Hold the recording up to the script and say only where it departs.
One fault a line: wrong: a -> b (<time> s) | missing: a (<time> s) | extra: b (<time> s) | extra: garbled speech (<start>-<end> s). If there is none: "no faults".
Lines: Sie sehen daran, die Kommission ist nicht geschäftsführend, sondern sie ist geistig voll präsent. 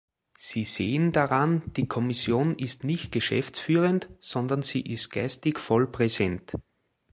no faults